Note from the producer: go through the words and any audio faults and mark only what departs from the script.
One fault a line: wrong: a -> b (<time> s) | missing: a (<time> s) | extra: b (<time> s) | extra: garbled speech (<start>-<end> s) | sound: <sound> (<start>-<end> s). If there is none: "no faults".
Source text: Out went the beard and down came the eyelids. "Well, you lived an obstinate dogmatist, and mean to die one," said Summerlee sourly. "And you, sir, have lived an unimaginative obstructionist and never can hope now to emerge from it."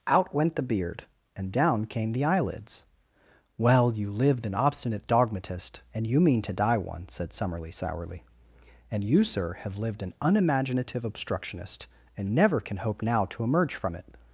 extra: you (6.1 s)